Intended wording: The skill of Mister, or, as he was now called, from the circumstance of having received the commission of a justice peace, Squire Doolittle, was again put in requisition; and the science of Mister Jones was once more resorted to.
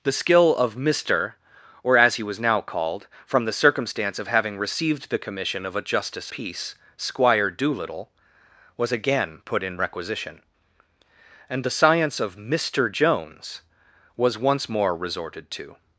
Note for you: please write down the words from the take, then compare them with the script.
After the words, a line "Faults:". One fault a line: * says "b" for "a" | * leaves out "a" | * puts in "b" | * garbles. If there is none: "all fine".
The skill of Mister, or, as he was now called, from the circumstance of having received the commission of a justice peace, Squire Doolittle, was again put in requisition; and the science of Mister Jones was once more resorted to.
Faults:
all fine